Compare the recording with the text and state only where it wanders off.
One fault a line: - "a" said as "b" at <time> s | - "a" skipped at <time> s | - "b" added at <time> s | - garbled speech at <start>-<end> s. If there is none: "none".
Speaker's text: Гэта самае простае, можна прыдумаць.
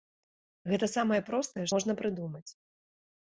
none